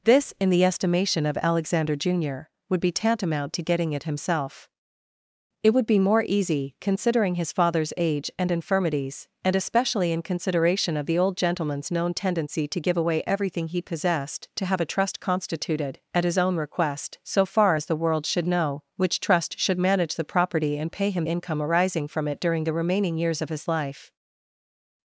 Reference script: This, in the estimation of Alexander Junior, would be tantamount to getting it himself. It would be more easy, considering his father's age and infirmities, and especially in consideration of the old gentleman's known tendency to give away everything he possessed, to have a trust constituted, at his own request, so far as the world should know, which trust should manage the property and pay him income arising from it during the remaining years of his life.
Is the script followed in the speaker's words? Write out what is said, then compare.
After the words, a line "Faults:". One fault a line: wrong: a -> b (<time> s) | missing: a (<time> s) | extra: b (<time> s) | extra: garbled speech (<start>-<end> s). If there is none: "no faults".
This, in the estimation of Alexander Junior, would be tantamount to getting it himself. It would be more easy, considering his father's age and infirmities, and especially in consideration of the old gentleman's known tendency to give away everything he possessed, to have a trust constituted, at his own request, so far as the world should know, which trust should manage the property and pay him income arising from it during the remaining years of his life.
Faults:
no faults